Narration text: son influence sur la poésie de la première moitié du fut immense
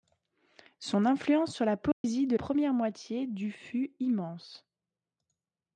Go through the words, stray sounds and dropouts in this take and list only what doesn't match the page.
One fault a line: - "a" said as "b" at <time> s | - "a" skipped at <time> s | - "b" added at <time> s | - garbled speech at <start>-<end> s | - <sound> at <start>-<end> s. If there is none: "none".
- dropout at 1.9-2.0 s
- "la" skipped at 2.4 s